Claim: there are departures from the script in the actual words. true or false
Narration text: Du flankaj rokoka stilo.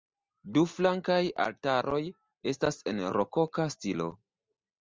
true